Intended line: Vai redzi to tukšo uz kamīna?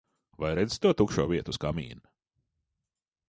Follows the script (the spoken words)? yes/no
no